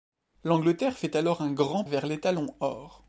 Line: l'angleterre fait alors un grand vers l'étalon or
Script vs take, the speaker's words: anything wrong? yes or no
no